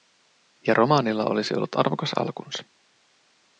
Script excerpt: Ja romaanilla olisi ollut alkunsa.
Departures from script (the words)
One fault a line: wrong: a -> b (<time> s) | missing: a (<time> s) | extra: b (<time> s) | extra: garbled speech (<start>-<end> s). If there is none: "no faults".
extra: arvokas (1.8 s)